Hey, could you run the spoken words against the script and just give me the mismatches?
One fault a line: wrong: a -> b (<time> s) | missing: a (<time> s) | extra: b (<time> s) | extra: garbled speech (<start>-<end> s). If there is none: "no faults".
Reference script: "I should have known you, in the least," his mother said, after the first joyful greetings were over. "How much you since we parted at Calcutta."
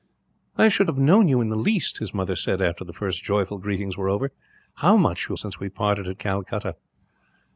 no faults